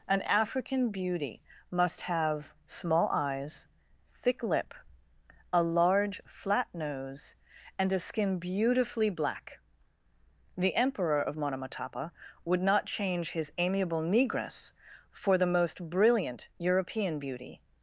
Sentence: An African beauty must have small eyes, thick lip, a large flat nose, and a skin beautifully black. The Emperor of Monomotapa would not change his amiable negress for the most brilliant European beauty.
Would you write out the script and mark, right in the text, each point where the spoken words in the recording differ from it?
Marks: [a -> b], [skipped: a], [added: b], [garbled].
An African beauty must have small eyes, thick lip, a large flat nose, and a skin beautifully black. The Emperor of Monomotapa would not change his amiable negress for the most brilliant European beauty.